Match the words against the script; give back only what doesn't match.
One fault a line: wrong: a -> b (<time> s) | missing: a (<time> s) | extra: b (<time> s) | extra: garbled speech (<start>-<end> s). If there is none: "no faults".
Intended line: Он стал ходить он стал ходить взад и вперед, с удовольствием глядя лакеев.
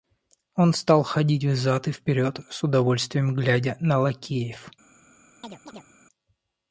missing: он стал ходить (1.4 s)
extra: на (3.8 s)